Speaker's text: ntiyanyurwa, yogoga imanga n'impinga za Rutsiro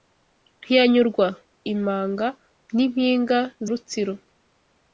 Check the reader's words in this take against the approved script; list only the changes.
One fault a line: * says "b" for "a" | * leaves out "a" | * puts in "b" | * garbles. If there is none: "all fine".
* leaves out "yogoga"
* leaves out "za"